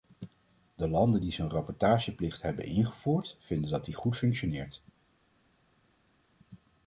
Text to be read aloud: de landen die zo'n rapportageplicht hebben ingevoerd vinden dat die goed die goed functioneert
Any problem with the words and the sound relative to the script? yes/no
yes